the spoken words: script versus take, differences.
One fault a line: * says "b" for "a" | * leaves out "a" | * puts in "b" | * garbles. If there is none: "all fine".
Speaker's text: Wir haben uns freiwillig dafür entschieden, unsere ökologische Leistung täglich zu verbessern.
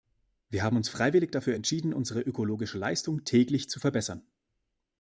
all fine